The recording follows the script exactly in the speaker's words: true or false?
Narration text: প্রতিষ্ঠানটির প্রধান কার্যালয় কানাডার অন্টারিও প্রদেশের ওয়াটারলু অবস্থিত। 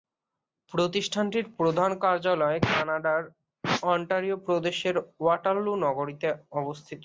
false